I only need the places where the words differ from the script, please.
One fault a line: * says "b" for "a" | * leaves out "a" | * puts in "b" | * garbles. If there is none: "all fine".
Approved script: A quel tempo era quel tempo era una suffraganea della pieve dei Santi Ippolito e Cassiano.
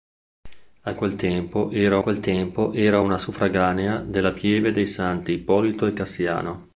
all fine